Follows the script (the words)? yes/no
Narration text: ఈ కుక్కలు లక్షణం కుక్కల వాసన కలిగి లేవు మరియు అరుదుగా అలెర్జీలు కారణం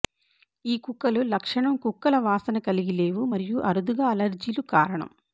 yes